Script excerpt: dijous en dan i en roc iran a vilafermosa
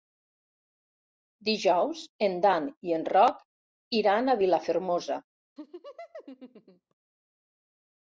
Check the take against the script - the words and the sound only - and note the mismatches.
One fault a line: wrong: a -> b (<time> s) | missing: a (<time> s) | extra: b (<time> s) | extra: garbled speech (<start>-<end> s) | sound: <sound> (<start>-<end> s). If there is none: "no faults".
sound: laugh (5.6-7.0 s)